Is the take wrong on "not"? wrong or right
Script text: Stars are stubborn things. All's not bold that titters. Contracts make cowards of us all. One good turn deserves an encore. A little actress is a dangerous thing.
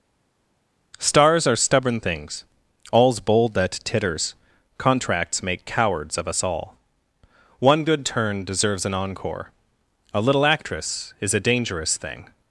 wrong